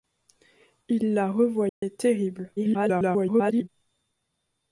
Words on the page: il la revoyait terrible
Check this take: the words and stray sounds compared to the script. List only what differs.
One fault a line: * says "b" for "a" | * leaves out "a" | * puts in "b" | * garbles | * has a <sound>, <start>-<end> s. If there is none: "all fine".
* has a dropout, 1.7-1.8 s
* garbles